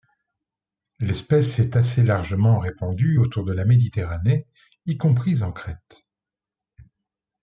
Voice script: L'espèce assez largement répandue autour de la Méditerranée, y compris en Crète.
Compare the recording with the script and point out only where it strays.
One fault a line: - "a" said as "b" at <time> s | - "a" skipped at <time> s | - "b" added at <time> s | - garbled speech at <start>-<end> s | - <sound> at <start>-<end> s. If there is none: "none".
- "est" added at 1.6 s